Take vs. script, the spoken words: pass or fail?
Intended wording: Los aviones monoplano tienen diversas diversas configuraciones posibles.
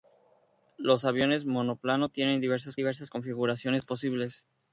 pass